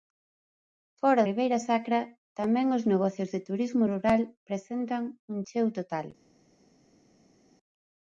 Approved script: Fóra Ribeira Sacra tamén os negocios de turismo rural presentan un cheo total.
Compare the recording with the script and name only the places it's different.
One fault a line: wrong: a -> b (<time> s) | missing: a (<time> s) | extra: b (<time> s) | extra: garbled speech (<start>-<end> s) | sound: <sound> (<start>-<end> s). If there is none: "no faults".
no faults